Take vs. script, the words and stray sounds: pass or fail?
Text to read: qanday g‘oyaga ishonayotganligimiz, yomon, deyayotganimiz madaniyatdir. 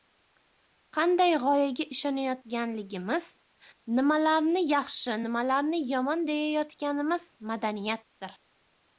fail